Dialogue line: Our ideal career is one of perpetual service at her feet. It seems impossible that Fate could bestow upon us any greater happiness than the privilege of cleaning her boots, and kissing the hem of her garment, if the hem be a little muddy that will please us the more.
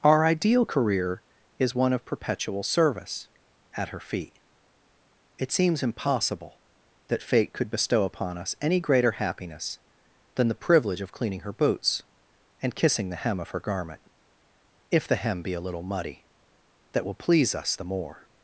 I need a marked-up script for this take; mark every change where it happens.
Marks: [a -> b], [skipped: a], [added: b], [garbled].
Our ideal career is one of perpetual service at her feet. It seems impossible that Fate could bestow upon us any greater happiness than the privilege of cleaning her boots, and kissing the hem of her garment, if the hem be a little muddy that will please us the more.